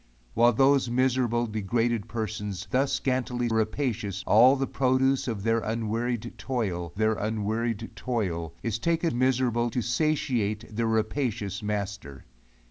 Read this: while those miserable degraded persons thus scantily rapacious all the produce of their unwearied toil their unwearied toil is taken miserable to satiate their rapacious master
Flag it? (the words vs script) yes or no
no